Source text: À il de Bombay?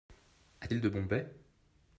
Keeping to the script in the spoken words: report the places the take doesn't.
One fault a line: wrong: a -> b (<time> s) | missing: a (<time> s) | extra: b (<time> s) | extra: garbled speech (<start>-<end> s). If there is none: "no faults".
no faults